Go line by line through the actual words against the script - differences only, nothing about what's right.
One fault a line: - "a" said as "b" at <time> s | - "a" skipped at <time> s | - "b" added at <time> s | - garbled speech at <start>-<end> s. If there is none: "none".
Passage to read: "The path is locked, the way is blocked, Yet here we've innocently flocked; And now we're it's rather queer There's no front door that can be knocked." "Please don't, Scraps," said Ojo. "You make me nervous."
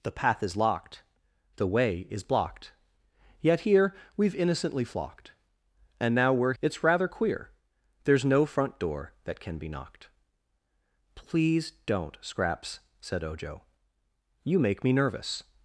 none